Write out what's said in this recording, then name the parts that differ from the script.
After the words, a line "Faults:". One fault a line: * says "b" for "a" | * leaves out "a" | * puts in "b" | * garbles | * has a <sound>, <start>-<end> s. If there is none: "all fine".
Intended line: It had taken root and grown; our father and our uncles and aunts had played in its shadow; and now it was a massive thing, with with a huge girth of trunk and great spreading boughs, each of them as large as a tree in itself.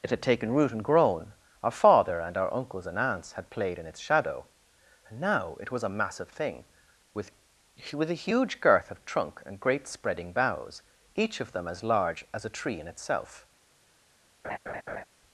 It had taken root and grown; our father and our uncles and aunts had played in its shadow; and now it was a massive thing, with with a huge girth of trunk and great spreading boughs, each of them as large as a tree in itself.
Faults:
* has a laugh, 14.4-15.0 s